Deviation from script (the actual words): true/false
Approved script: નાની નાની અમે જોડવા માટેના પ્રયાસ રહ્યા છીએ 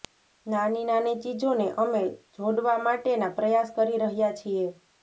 true